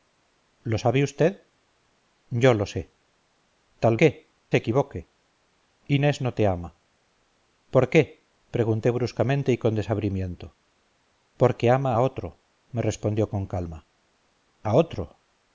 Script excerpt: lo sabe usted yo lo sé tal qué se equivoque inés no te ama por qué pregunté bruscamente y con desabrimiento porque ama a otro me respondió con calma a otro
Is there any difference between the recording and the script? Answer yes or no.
no